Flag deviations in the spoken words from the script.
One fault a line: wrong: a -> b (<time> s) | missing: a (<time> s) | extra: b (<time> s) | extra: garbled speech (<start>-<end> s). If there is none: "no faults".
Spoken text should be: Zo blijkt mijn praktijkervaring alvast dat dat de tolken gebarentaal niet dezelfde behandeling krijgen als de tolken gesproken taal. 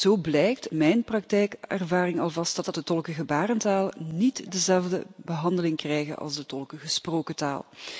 no faults